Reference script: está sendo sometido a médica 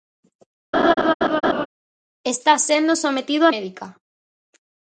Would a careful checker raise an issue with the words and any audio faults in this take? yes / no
yes